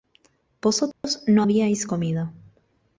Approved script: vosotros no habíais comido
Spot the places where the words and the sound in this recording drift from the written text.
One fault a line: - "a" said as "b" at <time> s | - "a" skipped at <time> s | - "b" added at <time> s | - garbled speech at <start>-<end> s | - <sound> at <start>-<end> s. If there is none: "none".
- dropout at 0.9-1.0 s